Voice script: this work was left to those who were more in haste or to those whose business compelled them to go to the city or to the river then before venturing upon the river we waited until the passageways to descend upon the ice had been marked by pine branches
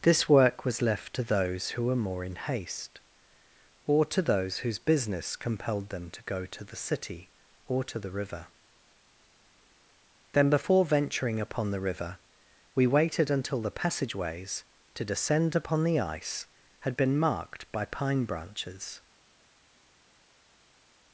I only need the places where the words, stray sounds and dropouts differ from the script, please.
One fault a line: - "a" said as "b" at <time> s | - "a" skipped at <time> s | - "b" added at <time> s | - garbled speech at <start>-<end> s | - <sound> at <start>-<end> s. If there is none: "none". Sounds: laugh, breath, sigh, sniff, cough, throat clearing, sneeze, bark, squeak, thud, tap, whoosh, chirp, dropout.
none